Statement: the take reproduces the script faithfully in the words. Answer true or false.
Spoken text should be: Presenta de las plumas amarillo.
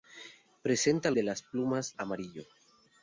true